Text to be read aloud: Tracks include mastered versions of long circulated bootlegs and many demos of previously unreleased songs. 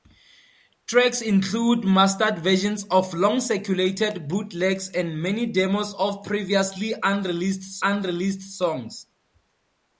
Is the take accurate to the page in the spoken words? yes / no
no